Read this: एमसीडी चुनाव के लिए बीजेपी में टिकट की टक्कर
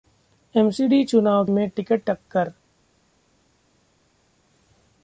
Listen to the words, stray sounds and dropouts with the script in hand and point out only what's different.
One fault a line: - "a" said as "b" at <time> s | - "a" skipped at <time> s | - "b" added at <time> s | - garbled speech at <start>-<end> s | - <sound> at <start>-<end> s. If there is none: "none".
- "के लिए बीजेपी" skipped at 1.4 s
- "की" skipped at 2.0 s